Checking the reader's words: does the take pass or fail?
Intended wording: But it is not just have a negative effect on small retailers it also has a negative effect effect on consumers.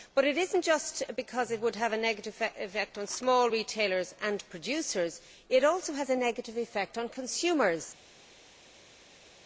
fail